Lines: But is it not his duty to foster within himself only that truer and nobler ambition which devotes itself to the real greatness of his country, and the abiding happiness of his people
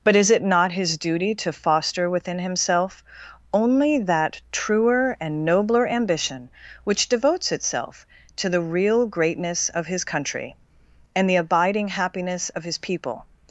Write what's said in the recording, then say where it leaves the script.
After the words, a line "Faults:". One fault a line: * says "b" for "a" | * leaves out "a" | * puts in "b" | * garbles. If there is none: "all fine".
But is it not his duty to foster within himself only that truer and nobler ambition which devotes itself to the real greatness of his country, and the abiding happiness of his people
Faults:
all fine